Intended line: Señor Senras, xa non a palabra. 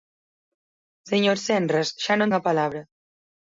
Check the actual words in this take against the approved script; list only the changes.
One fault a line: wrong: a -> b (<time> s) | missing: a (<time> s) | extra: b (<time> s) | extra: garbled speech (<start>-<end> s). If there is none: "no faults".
no faults